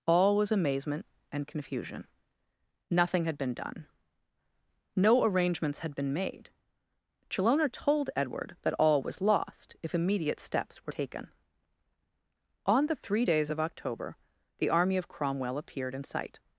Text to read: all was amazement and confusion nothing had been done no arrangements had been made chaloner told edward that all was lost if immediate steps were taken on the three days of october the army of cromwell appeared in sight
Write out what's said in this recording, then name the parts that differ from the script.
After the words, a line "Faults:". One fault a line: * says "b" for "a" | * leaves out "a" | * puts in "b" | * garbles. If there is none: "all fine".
all was amazement and confusion nothing had been done no arrangements had been made chaloner told edward that all was lost if immediate steps were taken on the three days of october the army of cromwell appeared in sight
Faults:
all fine